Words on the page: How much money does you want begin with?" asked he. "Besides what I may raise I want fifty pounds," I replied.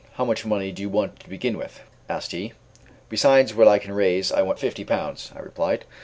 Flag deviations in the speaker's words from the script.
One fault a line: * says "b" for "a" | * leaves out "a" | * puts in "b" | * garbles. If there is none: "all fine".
* says "do" for "does"
* puts in "to"
* says "can" for "may"